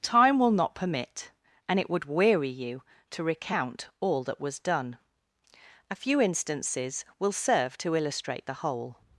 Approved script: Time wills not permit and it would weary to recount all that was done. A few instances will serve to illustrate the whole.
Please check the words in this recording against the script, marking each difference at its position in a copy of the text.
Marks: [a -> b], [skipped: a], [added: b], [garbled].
Time [wills -> will] not permit and it would weary [added: you] to recount all that was done. A few instances will serve to illustrate the whole.